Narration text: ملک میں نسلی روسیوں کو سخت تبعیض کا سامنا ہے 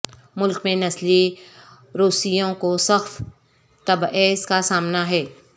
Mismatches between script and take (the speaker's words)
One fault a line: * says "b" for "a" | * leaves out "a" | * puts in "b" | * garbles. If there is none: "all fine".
all fine